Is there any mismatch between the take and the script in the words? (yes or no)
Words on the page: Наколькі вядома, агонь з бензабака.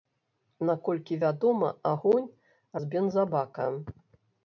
no